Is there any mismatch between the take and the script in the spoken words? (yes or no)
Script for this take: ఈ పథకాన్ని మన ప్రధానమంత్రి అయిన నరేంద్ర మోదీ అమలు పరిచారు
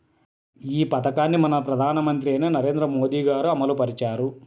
yes